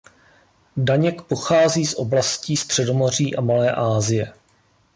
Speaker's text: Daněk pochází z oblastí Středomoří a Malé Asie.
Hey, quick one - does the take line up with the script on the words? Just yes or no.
yes